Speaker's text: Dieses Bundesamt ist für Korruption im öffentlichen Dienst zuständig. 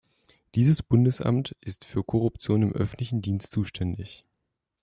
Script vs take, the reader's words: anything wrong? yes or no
no